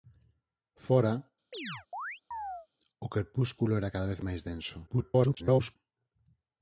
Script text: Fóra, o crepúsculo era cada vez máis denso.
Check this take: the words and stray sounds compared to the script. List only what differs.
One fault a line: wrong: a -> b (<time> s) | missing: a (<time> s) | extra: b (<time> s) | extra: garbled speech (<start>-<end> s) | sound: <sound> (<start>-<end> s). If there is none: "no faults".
sound: chirp (1.5-2.7 s)
extra: garbled speech (4.9-5.8 s)